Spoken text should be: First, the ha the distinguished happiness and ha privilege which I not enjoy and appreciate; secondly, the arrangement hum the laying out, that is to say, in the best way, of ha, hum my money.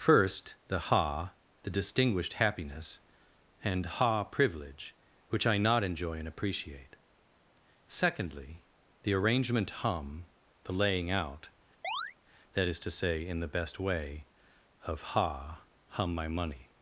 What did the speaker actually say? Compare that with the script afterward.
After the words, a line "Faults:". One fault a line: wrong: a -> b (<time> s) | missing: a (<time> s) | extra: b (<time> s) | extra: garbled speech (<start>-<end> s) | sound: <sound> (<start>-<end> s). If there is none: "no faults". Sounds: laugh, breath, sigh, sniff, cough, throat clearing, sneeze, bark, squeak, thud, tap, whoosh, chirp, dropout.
First, the ha the distinguished happiness and ha privilege which I not enjoy and appreciate; secondly, the arrangement hum the laying out, that is to say, in the best way, of ha, hum my money.
Faults:
sound: chirp (11.8-12.1 s)